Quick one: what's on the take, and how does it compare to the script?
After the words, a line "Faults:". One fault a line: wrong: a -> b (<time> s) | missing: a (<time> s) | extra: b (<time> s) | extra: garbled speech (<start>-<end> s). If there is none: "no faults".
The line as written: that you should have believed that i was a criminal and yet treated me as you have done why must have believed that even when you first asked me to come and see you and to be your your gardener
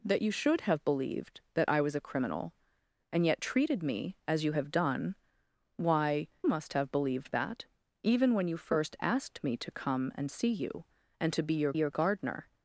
that you should have believed that i was a criminal and yet treated me as you have done why must have believed that even when you first asked me to come and see you and to be your your gardener
Faults:
no faults